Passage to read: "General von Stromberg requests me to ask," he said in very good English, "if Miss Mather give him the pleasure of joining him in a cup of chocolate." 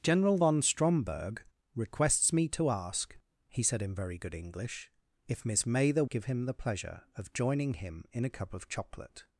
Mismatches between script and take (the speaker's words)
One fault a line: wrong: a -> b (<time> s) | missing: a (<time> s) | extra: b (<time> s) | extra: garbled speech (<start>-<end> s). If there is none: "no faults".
no faults